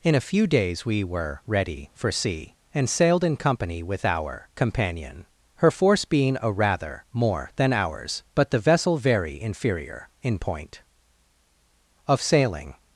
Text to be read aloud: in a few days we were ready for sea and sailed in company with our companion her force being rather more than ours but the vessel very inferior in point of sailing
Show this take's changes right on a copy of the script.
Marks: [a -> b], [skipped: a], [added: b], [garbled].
in a few days we were ready for sea and sailed in company with our companion her force being [added: a] rather more than ours but the vessel very inferior in point of sailing